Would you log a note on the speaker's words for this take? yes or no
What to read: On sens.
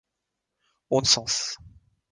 no